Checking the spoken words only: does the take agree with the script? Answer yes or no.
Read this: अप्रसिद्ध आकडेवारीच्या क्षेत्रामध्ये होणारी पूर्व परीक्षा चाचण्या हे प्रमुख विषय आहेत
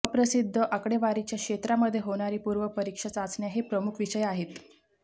yes